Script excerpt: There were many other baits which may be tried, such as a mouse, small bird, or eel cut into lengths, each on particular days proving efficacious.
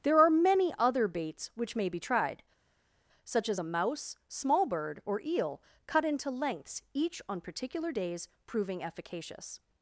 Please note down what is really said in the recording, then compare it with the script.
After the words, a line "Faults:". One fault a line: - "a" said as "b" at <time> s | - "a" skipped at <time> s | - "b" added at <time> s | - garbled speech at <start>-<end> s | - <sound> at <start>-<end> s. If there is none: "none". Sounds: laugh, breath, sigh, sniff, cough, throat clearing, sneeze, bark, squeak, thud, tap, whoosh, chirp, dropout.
There are many other baits which may be tried, such as a mouse, small bird, or eel cut into lengths, each on particular days proving efficacious.
Faults:
- "were" said as "are" at 0.2 s